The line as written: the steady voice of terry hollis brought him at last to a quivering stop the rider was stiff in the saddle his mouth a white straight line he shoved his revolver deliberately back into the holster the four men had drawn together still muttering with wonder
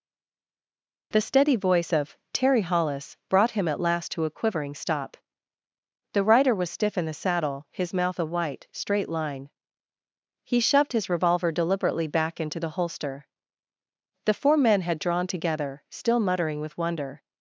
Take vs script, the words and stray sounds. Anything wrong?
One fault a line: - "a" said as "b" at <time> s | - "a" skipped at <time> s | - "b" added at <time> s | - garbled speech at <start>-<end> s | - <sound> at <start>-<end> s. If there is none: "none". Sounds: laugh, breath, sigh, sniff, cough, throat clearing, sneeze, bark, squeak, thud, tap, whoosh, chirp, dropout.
none